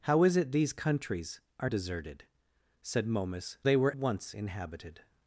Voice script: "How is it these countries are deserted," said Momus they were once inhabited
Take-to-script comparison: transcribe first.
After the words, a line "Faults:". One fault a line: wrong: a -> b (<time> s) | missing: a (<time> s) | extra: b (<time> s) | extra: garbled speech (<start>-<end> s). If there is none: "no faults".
"How is it these countries are deserted," said Momus they were once inhabited
Faults:
no faults